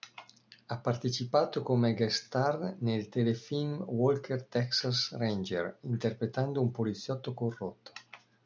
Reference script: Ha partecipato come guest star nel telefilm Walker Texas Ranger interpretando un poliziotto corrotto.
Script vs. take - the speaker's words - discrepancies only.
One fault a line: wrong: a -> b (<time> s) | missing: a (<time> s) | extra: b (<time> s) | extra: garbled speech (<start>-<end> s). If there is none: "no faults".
no faults